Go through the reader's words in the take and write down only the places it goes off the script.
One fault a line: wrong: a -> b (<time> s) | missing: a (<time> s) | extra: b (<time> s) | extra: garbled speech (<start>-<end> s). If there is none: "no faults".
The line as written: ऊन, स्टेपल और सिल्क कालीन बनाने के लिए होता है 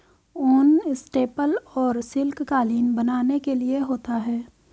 no faults